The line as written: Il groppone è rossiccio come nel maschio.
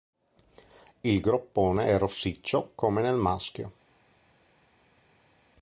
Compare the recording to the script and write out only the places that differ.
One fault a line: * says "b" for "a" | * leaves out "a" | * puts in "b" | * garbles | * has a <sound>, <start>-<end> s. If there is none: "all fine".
all fine